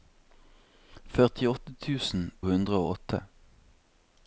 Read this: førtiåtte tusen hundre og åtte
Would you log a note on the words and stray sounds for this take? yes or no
no